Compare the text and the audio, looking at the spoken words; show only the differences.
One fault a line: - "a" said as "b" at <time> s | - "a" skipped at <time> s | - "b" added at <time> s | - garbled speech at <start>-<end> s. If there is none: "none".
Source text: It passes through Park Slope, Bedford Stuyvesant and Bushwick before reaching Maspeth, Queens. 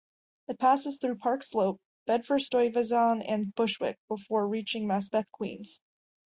none